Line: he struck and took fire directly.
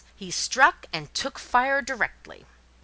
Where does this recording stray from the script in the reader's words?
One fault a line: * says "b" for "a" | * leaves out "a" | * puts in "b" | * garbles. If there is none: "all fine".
all fine